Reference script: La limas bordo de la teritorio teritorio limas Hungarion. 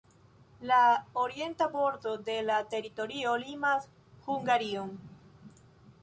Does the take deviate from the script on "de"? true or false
false